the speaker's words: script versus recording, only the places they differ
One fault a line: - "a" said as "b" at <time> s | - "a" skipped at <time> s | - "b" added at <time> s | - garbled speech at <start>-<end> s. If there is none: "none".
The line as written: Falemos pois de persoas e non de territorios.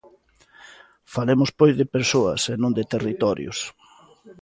none